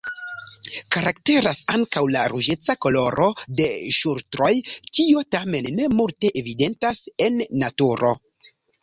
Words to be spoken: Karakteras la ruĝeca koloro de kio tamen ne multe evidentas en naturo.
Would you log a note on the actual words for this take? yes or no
yes